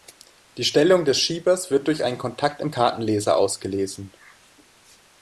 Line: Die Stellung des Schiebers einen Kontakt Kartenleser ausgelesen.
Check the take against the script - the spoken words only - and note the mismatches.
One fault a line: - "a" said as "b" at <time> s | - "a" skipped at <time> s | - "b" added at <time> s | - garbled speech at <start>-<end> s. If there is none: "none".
- "wird durch" added at 1.7 s
- "im" added at 2.6 s